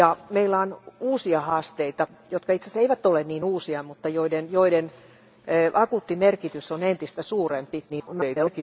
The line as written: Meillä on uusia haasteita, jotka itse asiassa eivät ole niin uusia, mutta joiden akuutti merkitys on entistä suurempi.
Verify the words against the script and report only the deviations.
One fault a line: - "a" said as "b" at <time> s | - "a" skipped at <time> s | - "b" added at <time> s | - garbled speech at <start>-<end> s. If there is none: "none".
- garbled speech at 7.9-8.6 s